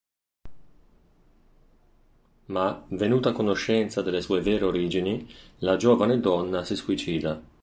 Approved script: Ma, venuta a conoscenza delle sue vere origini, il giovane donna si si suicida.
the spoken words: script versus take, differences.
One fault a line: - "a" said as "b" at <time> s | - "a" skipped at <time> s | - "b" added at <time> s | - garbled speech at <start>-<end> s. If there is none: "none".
- "il" said as "la" at 5.6 s
- "si" skipped at 6.8 s